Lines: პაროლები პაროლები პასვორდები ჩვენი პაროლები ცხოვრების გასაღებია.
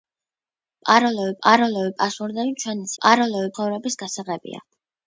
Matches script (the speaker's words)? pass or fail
pass